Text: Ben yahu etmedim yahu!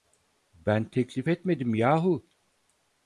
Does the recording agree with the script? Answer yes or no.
no